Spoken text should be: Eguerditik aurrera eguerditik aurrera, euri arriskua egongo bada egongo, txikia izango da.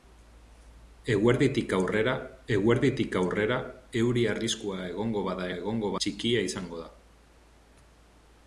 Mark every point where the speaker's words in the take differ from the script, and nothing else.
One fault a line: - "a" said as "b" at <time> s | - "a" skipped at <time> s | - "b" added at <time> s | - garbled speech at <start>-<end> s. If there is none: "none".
none